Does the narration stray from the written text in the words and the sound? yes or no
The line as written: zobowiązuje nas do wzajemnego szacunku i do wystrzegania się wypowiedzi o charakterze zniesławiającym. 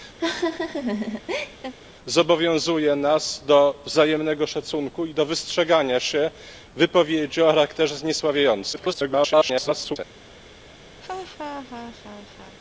yes